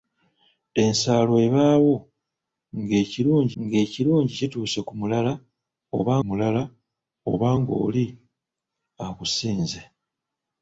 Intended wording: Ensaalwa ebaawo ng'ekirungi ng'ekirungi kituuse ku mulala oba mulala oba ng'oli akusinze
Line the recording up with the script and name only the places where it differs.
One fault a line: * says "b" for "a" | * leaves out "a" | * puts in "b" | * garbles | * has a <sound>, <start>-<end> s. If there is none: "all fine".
all fine